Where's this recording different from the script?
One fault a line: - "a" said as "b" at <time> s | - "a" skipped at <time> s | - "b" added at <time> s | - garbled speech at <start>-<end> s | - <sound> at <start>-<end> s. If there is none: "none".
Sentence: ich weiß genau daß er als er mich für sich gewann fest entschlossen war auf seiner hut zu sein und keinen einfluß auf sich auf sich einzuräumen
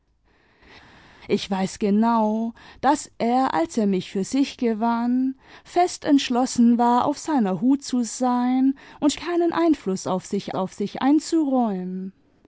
none